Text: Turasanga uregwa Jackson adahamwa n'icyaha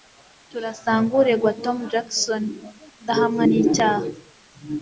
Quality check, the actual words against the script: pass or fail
fail